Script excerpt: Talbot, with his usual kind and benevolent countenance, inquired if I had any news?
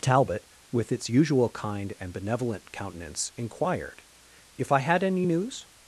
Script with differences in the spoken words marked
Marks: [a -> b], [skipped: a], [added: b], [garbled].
Talbot, with [his -> its] usual kind and benevolent countenance, inquired if I had any news?